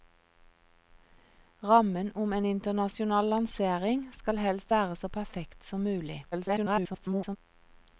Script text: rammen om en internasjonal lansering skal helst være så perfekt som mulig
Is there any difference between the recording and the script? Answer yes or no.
yes